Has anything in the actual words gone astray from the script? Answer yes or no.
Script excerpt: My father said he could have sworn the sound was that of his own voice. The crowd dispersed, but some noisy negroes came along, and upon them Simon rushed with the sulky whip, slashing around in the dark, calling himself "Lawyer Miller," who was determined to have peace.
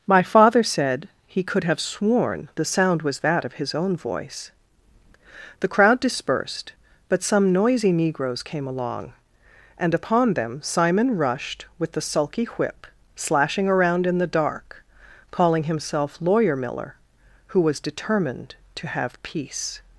no